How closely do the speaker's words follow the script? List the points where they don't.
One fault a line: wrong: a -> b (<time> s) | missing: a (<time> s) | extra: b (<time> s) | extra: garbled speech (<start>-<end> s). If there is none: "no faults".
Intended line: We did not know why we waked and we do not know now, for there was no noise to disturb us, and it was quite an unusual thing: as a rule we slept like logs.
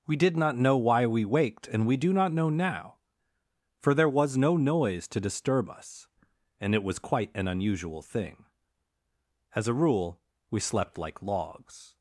no faults